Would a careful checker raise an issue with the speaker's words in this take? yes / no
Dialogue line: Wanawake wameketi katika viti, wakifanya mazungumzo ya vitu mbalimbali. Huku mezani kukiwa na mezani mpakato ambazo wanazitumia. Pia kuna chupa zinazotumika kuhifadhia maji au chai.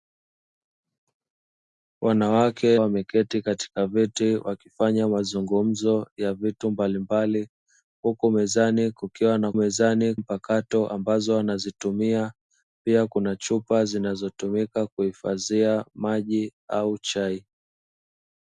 no